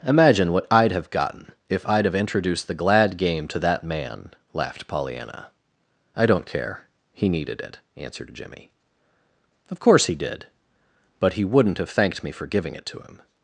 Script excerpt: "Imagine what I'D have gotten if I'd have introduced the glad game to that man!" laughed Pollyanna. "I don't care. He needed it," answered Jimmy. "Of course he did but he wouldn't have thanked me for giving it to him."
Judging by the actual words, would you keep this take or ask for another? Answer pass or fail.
pass